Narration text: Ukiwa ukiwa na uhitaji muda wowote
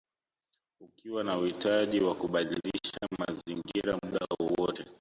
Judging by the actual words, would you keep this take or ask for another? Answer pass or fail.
fail